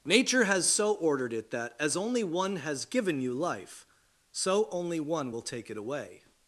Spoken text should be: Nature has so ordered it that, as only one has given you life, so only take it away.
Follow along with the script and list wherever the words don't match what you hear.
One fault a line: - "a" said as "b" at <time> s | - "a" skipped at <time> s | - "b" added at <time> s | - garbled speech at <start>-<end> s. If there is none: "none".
- "one will" added at 5.0 s